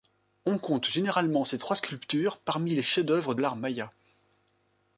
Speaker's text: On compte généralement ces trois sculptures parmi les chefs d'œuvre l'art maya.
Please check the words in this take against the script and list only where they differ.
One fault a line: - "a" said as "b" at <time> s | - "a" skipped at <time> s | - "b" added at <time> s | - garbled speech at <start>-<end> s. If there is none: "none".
none